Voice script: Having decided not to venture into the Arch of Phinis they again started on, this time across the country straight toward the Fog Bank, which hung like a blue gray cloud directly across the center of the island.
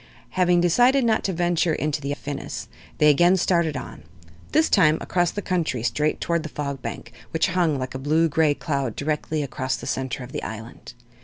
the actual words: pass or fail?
fail